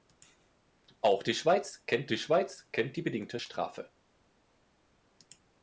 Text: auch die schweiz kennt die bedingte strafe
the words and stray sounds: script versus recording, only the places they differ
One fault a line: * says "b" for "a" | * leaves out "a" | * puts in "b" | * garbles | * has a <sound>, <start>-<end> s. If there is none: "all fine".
* puts in "schweiz kennt die"